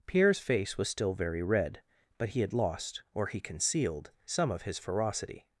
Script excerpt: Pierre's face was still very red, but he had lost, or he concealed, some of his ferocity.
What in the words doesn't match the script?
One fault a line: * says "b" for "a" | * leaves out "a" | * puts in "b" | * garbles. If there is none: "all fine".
all fine